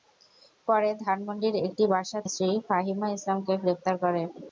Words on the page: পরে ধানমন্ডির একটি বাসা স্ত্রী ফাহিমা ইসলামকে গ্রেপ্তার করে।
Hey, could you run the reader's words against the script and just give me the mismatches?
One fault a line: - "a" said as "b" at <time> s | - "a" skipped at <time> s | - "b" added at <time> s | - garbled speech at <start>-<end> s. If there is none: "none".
none